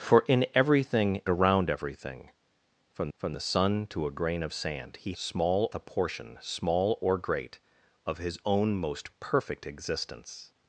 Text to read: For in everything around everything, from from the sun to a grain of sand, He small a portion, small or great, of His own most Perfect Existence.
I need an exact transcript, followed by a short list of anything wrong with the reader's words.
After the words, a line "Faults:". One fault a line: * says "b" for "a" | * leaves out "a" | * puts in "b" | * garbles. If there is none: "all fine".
For in everything around everything, from from the sun to a grain of sand, He small a portion, small or great, of His own most Perfect Existence.
Faults:
all fine